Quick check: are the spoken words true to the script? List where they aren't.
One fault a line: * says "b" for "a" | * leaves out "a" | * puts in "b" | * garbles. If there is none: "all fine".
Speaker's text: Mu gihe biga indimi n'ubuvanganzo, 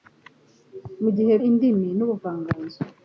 * leaves out "biga"